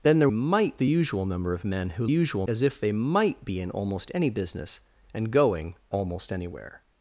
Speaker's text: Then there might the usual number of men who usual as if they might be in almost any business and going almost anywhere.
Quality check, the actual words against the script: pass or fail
pass